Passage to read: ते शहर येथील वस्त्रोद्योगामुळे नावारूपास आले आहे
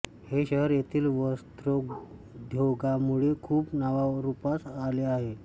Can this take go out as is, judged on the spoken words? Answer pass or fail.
fail